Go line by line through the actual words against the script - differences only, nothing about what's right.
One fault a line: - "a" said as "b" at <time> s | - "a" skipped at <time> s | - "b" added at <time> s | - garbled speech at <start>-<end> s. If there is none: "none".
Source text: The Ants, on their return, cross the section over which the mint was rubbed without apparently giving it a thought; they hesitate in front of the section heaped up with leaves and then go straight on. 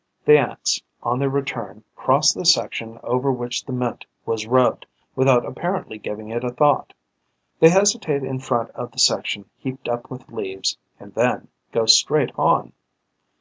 none